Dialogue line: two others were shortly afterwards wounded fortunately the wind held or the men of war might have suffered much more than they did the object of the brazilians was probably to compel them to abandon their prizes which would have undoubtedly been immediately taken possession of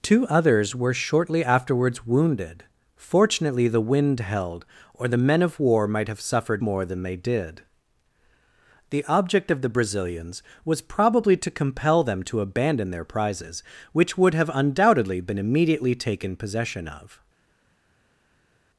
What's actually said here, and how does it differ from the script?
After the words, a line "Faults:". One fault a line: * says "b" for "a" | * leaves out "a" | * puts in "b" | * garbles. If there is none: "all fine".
two others were shortly afterwards wounded fortunately the wind held or the men of war might have suffered more than they did the object of the brazilians was probably to compel them to abandon their prizes which would have undoubtedly been immediately taken possession of
Faults:
* leaves out "much"